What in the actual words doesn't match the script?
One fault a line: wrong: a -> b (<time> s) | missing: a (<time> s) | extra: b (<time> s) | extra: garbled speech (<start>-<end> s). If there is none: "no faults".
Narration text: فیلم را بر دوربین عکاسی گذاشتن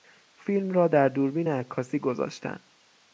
wrong: بر -> در (0.9 s)